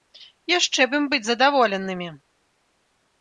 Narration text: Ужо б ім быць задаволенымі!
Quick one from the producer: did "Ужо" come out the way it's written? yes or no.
no